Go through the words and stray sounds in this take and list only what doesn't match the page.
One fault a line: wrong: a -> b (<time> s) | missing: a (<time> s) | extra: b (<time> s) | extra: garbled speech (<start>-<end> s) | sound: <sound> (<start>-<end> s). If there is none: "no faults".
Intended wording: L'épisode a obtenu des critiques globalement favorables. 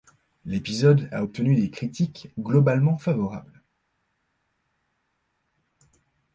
no faults